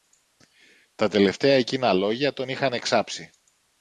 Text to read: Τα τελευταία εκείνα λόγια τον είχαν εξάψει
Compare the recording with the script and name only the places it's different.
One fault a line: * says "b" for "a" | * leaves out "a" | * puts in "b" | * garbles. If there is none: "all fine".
all fine